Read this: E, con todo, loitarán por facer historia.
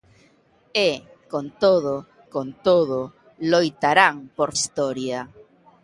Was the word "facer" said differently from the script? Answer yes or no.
yes